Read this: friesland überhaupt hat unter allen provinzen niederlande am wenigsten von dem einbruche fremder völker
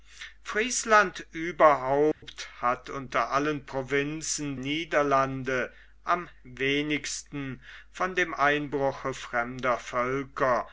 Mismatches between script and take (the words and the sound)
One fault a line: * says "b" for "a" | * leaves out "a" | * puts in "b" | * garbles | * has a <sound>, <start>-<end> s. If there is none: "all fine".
* has a dropout, 2.1-2.2 s